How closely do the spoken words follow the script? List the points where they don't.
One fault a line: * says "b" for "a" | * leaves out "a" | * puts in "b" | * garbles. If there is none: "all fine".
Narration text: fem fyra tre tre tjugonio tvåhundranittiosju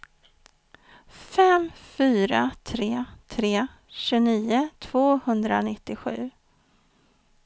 all fine